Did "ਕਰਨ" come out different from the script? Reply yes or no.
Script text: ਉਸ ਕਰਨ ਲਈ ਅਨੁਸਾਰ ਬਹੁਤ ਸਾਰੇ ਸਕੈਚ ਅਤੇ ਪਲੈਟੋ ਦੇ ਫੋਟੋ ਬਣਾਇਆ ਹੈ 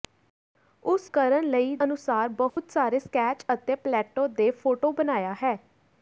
no